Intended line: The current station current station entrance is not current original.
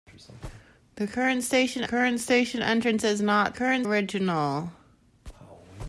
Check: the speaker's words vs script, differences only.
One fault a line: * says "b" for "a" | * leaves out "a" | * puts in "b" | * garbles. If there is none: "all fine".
all fine